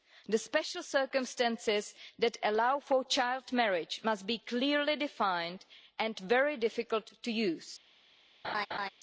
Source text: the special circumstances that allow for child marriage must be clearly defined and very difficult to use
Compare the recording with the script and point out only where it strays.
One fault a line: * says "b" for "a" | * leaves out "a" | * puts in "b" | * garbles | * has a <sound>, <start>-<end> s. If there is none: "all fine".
* has a laugh, 8.4-8.9 s